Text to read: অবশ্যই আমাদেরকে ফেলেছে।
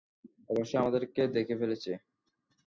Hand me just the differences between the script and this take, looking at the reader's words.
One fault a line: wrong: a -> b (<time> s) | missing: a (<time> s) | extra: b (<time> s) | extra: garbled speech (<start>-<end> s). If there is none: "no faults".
extra: দেখে (1.4 s)